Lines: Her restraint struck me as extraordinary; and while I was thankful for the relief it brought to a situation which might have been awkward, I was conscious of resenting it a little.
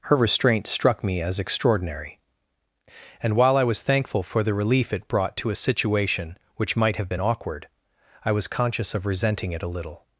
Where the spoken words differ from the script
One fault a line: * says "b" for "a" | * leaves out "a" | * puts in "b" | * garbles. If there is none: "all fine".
all fine